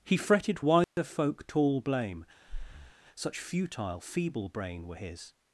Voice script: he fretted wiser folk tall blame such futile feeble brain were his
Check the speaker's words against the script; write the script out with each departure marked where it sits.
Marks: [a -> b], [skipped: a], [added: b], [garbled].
he fretted wiser folk tall blame such futile feeble brain were his